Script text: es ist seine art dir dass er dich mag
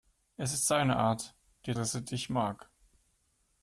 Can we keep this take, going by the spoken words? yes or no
yes